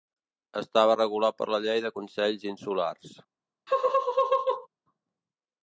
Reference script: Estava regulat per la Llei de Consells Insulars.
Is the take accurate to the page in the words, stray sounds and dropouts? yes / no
no